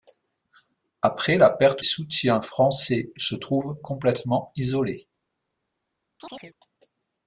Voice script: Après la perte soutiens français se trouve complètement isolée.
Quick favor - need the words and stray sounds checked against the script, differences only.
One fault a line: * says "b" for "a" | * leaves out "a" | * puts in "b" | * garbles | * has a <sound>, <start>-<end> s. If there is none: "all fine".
* has a chirp, 6.2-6.6 s